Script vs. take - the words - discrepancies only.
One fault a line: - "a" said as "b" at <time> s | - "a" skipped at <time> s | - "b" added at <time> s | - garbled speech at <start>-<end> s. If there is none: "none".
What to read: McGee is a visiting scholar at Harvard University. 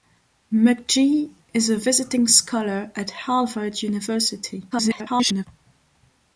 - garbled speech at 4.7-5.5 s